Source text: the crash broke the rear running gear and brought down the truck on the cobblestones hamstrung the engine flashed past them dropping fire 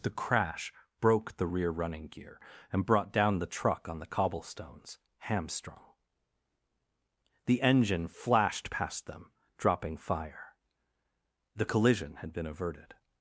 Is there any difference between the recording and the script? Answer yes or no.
yes